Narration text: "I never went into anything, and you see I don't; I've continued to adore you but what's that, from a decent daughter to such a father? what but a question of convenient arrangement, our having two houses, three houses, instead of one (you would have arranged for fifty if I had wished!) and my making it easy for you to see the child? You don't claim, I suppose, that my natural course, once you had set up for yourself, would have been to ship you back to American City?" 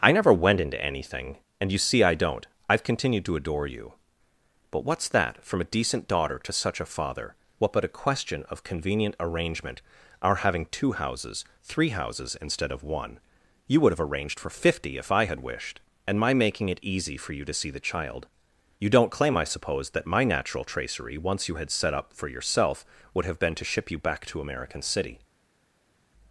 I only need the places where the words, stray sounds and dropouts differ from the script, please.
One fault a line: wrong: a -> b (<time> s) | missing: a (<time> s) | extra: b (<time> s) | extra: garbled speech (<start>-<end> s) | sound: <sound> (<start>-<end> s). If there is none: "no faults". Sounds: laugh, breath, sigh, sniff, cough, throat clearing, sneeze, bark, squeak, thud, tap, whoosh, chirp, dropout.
wrong: course -> tracery (20.6 s)